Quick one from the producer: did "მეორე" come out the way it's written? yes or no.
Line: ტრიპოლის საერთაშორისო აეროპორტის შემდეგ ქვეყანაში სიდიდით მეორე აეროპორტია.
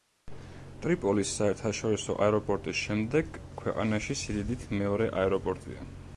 yes